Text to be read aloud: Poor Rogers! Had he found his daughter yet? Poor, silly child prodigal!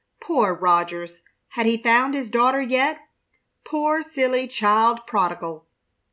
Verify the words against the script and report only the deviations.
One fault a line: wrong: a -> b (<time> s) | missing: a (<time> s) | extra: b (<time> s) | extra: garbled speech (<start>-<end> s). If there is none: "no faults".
no faults